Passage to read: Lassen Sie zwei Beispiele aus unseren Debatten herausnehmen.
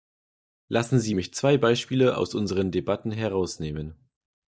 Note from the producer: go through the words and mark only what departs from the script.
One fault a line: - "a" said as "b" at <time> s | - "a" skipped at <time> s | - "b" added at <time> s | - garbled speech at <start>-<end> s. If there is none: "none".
- "mich" added at 1.1 s